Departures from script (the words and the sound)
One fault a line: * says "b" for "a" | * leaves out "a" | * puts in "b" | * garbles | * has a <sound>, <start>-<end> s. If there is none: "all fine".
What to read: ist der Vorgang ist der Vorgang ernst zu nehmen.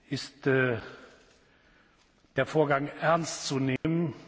* leaves out "ist der Vorgang"
* has a dropout, 3.8-3.8 s